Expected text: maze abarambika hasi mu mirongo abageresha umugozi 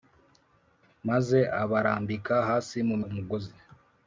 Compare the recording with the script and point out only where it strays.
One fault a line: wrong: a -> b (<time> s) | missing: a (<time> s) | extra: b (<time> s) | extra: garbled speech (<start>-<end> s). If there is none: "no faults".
missing: mirongo abageresha (3.0 s)